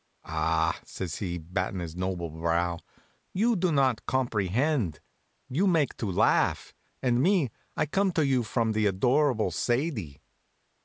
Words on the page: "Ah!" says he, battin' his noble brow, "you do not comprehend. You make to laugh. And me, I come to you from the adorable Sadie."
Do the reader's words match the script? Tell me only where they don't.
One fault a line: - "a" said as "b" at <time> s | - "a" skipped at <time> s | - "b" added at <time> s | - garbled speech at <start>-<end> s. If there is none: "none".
none